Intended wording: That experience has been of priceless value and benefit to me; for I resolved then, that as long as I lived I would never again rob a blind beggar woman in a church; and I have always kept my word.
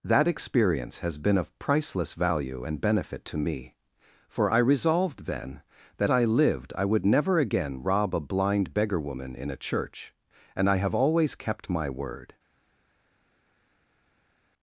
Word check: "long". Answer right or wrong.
wrong